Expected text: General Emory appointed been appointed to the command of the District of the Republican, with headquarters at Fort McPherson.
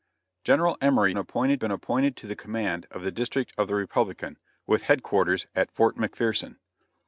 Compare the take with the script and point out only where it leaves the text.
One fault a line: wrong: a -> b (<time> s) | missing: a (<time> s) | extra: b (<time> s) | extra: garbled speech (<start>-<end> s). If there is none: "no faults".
no faults